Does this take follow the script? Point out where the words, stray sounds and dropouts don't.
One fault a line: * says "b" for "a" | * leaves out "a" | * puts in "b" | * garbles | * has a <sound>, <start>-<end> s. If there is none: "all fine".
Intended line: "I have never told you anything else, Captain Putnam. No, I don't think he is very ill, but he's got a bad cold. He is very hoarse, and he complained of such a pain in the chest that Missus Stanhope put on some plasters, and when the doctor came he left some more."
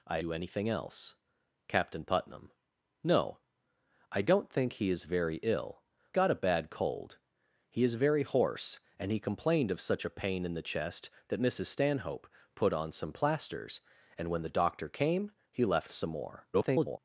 * leaves out "have never told"
* leaves out "but he's"
* garbles